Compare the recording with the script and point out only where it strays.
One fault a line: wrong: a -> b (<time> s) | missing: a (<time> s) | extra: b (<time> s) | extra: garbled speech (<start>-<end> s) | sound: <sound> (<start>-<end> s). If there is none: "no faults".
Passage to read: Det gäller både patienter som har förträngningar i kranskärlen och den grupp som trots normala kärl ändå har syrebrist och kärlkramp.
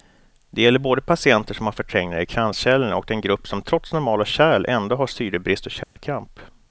sound: dropout (5.8-6.0 s)